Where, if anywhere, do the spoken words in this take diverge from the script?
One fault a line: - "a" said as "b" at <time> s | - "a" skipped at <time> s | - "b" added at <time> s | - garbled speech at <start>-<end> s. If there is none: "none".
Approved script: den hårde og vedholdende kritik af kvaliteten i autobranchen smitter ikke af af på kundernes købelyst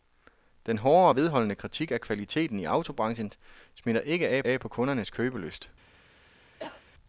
none